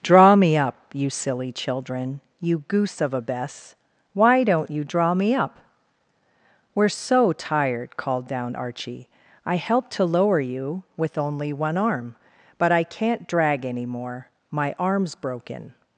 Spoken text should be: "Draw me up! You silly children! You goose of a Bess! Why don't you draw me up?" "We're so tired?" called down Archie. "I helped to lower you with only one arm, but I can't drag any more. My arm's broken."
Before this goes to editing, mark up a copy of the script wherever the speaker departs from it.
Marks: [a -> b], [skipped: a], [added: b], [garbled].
"Draw me up! You silly children! You goose of a Bess! Why don't you draw me up?" "We're so tired?" called down Archie. "I helped to lower you with only one arm, but I can't drag any more. My arm's broken."